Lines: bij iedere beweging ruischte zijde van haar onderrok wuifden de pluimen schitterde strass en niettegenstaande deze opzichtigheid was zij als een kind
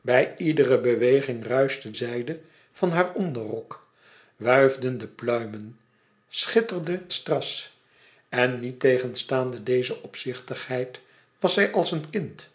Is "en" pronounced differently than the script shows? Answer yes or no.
no